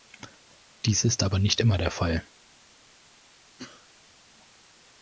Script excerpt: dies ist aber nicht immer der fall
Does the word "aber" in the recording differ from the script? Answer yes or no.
no